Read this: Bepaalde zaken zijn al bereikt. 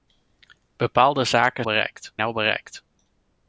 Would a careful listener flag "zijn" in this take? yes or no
yes